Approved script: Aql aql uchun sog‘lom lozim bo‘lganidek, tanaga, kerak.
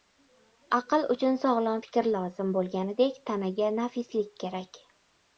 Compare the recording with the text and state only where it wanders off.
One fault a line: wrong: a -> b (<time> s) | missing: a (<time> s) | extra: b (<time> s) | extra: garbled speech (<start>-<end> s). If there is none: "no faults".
missing: aql (1.0 s)
extra: fikr (1.8 s)
extra: nafislik (3.8 s)